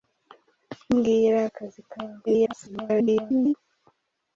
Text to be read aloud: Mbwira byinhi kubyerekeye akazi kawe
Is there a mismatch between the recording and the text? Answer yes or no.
yes